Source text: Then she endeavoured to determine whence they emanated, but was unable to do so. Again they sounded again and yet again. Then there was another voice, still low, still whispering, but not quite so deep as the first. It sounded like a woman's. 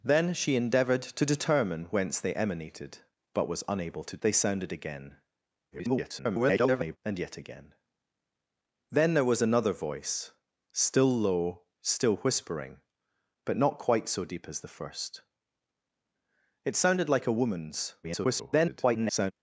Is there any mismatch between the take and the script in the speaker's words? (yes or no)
yes